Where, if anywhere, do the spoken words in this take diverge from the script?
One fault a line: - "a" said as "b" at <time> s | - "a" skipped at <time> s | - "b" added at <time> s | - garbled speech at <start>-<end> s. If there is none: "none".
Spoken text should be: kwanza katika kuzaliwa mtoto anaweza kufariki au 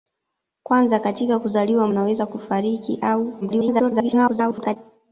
- "mtoto" skipped at 1.9 s
- garbled speech at 3.4-4.8 s